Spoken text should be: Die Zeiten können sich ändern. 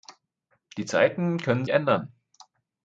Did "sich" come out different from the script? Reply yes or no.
yes